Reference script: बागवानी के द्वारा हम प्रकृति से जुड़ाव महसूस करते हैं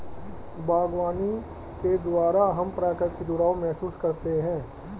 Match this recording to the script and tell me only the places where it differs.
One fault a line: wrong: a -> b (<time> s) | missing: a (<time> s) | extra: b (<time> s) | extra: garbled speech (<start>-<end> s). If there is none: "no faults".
missing: से (3.2 s)